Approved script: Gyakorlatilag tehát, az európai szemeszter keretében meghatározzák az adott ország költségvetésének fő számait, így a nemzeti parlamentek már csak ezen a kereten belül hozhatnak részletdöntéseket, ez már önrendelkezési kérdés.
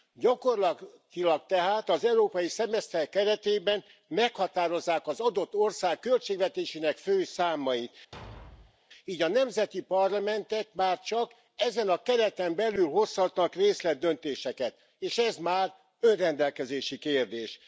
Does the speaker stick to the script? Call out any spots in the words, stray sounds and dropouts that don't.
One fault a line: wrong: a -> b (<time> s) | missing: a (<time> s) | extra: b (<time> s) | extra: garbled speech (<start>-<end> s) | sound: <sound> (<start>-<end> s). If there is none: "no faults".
sound: thud (8.1-8.8 s)
extra: és (15.0 s)